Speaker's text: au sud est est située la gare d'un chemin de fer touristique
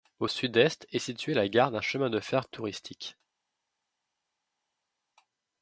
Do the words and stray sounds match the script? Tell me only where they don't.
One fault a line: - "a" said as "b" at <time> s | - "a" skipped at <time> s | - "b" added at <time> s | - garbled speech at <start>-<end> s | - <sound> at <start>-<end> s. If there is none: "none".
none